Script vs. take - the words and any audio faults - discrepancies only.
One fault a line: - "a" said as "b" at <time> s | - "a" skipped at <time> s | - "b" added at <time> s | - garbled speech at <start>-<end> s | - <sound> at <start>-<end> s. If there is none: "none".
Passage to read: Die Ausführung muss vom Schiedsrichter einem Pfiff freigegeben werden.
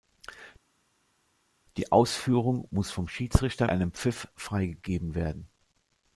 none